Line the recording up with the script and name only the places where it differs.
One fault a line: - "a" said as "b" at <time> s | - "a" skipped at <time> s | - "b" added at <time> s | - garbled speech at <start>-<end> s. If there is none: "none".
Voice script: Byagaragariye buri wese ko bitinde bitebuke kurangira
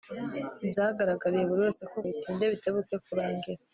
none